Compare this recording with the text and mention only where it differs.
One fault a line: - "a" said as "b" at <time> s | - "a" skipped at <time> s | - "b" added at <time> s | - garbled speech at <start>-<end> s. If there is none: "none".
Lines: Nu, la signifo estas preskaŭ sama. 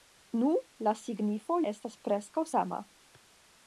none